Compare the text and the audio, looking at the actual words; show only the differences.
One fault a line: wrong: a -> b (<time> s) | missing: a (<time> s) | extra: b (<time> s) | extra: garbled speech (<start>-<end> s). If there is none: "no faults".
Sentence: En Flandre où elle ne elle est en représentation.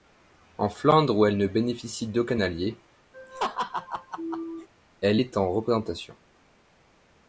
extra: bénéficie d'aucun allié (1.4 s)